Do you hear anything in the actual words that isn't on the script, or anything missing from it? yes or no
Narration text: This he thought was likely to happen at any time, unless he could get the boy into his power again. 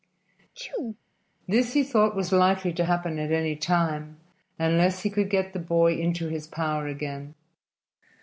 no